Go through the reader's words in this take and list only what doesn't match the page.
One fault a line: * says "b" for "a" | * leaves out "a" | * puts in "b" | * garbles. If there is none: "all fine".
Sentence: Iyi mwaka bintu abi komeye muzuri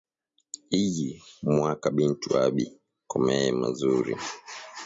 all fine